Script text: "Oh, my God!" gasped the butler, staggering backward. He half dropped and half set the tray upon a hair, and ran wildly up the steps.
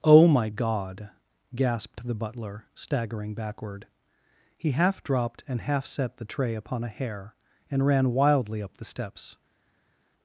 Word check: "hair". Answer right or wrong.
right